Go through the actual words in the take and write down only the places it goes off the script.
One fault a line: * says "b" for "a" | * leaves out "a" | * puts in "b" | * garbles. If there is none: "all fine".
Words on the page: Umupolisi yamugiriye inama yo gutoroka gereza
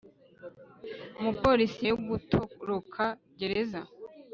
* leaves out "yamugiriye inama"